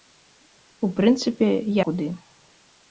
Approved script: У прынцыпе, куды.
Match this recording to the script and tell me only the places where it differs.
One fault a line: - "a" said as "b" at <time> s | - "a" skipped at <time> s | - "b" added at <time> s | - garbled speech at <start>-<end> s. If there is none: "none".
none